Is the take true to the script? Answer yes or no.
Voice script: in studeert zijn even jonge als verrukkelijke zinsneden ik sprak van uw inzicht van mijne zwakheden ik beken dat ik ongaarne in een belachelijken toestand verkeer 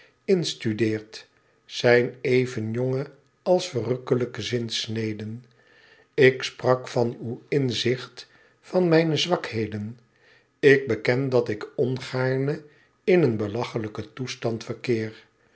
yes